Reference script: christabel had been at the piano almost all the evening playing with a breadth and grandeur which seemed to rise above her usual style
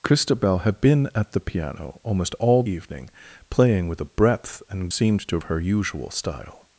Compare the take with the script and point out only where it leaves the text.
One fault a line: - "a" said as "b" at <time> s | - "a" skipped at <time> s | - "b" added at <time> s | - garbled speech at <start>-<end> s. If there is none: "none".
- "the" skipped at 2.6 s
- "grandeur which" skipped at 4.9 s
- "rise above" skipped at 5.4 s